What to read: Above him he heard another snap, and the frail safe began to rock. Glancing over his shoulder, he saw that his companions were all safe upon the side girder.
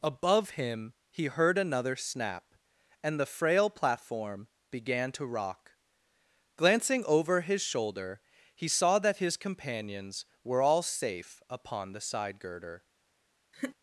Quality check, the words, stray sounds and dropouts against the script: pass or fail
fail